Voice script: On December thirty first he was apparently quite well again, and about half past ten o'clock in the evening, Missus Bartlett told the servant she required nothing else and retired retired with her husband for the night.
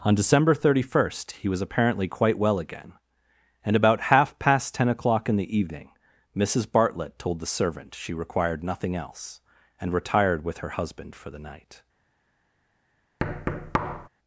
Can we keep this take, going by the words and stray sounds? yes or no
no